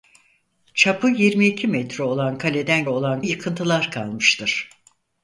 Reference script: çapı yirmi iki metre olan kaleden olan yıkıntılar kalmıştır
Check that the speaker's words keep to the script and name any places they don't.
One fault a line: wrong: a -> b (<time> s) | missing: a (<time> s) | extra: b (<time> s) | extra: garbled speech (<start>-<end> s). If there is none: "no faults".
no faults